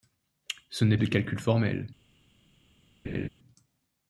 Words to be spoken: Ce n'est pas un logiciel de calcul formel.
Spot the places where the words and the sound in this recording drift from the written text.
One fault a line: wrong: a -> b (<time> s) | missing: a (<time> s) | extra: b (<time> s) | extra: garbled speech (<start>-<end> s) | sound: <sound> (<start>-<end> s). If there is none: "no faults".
missing: pas un logiciel (1.0 s)
sound: laugh (3.0-3.3 s)